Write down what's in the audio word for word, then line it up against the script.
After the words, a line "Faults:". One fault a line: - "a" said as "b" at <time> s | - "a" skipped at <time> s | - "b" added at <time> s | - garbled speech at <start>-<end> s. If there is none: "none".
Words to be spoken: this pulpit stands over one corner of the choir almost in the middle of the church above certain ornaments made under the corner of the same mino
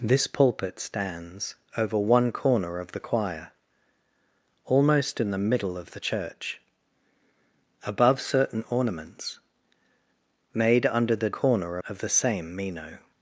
this pulpit stands over one corner of the choir almost in the middle of the church above certain ornaments made under the corner of the same mino
Faults:
none